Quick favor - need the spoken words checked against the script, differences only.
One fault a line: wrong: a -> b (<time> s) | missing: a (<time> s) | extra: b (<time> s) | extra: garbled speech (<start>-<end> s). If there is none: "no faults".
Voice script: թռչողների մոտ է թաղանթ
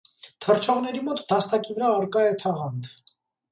extra: դաստակի վրա առկա (1.3 s)